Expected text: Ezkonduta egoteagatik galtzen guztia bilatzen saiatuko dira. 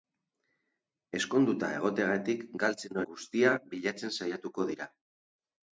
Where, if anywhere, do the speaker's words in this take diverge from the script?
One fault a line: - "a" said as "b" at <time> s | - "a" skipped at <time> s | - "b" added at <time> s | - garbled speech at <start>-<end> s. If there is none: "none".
none